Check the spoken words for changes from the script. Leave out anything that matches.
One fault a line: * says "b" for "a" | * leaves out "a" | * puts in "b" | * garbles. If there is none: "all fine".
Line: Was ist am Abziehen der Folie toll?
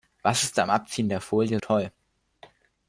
all fine